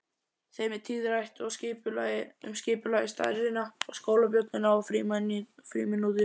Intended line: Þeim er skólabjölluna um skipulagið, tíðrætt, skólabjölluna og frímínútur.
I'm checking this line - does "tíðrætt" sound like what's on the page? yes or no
no